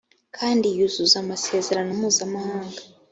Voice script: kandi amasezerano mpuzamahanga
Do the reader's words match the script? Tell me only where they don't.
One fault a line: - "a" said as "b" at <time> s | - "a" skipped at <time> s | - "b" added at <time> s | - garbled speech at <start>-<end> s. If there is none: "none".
- "yuzuza" added at 0.8 s